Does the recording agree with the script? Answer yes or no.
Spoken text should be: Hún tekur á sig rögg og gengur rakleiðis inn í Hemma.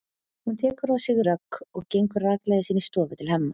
no